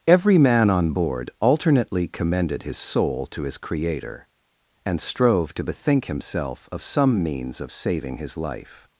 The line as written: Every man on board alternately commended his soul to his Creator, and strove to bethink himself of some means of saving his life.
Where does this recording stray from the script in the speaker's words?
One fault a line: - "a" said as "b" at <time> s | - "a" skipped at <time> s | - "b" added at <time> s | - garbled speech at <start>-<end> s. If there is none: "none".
none